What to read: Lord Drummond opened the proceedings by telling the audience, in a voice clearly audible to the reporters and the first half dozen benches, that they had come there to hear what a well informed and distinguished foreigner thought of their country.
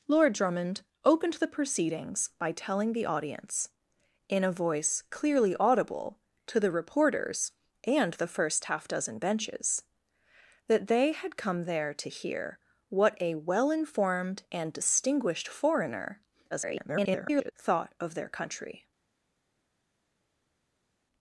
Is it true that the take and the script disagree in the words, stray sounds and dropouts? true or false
true